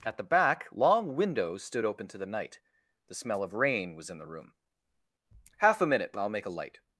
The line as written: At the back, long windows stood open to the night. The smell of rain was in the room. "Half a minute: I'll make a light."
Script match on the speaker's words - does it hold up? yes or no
yes